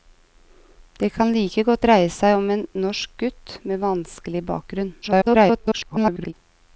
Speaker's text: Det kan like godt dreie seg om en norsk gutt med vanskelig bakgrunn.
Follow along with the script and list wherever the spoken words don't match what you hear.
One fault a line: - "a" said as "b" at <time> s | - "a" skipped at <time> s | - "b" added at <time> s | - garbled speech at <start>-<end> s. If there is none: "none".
- garbled speech at 5.0-6.3 s